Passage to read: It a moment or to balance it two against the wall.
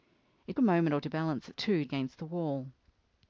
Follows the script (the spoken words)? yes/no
yes